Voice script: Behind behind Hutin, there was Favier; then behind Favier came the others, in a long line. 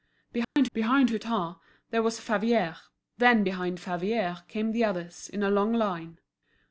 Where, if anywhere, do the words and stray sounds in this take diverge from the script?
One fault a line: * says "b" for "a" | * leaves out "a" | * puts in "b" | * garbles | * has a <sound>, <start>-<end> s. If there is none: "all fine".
* has a dropout, 0.4-0.6 s